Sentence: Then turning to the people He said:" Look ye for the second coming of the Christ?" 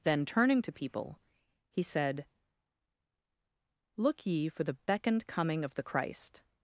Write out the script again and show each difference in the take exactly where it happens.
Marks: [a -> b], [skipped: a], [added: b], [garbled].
Then turning to [skipped: the] people He said:" Look ye for the [second -> beckoned] coming of the Christ?"